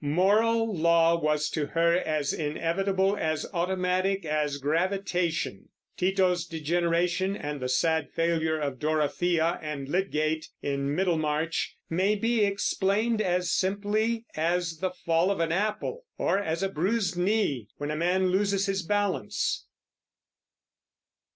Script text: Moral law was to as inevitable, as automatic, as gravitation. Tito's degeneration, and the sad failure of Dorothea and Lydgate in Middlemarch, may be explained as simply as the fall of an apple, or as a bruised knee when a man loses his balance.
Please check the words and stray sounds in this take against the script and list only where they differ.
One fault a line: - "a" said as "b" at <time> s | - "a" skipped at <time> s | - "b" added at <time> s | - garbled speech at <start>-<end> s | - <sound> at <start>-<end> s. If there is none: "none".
- "her" added at 1.7 s